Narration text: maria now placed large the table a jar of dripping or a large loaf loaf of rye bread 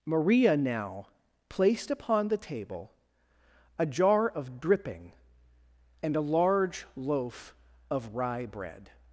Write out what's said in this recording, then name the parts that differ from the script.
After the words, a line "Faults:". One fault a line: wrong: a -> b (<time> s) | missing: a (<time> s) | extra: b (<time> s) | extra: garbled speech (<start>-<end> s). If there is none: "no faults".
maria now placed upon the table a jar of dripping and a large loaf of rye bread
Faults:
wrong: large -> upon (1.9 s)
wrong: or -> and (6.0 s)
missing: loaf (7.5 s)